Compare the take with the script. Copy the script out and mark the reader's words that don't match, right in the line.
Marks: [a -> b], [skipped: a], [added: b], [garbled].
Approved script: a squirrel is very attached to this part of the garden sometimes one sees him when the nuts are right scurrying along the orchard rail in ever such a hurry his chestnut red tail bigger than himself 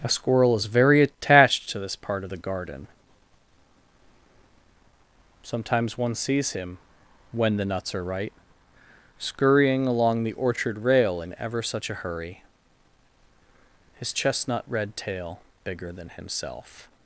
a squirrel is very attached to this part of the garden sometimes one sees him when the nuts are right scurrying along the orchard rail in ever such a hurry his chestnut red tail bigger than himself